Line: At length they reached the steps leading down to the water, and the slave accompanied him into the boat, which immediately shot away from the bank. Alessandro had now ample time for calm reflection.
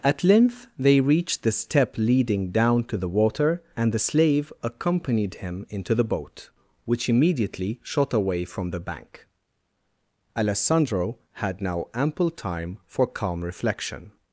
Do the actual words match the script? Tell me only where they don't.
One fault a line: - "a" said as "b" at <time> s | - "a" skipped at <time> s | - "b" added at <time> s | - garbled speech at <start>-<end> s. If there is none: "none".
- "steps" said as "step" at 1.5 s